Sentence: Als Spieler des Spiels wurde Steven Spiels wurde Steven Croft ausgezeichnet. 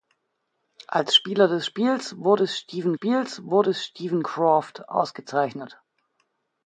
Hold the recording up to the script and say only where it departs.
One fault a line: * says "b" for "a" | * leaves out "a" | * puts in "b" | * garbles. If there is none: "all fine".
all fine